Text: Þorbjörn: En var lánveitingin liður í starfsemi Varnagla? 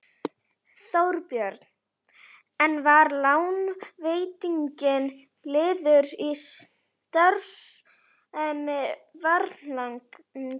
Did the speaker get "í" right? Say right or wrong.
right